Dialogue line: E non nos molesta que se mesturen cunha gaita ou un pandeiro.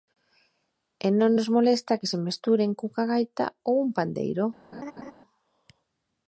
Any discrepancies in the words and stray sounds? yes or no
yes